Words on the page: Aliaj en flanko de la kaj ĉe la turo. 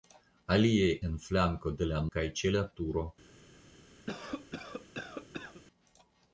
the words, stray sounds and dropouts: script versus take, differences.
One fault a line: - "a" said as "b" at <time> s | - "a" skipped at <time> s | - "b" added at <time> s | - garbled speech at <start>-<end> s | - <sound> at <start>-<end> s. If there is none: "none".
- cough at 4.1-5.6 s